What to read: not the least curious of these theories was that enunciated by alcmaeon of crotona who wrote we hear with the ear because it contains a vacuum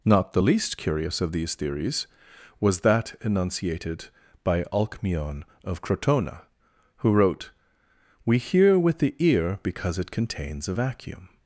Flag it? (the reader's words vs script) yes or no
no